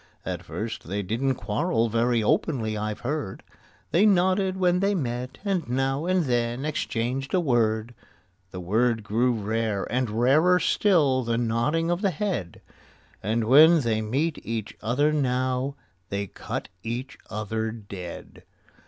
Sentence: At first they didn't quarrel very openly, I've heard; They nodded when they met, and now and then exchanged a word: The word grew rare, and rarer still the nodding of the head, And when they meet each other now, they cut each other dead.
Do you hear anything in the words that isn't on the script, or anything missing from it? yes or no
no